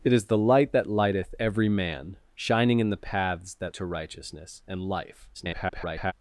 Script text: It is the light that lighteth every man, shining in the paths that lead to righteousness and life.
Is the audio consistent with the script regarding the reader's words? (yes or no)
no